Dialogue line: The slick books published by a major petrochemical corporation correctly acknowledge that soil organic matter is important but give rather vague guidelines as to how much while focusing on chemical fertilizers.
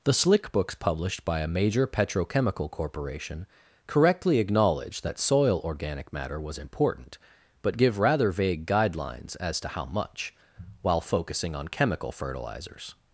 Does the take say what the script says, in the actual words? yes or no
no